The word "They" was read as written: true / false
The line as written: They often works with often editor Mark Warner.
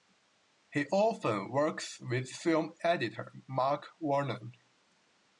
false